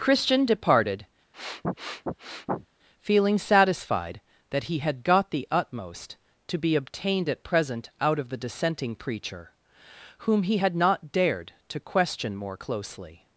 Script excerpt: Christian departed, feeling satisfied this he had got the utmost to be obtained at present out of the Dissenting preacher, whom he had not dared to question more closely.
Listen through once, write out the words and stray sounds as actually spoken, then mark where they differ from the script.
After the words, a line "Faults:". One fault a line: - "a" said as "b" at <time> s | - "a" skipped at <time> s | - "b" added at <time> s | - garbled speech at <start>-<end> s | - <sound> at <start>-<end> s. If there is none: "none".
Christian departed, feeling satisfied that he had got the utmost to be obtained at present out of the Dissenting preacher, whom he had not dared to question more closely.
Faults:
- sniff at 1.3-2.7 s
- "this" said as "that" at 4.5 s